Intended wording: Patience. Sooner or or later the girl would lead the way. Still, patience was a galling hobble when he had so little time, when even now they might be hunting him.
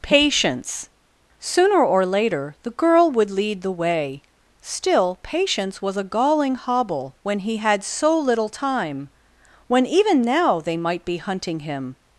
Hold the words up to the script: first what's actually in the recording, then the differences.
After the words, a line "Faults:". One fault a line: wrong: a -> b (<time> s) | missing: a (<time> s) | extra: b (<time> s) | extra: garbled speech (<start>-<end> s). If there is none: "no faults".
Patience. Sooner or later the girl would lead the way. Still, patience was a galling hobble when he had so little time, when even now they might be hunting him.
Faults:
missing: or (2.1 s)